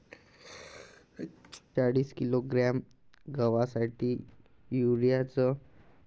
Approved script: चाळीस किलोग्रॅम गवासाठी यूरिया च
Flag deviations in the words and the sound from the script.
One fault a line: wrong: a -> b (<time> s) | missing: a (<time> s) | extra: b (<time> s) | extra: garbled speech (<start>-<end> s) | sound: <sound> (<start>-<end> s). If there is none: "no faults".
sound: sneeze (0.1-1.6 s)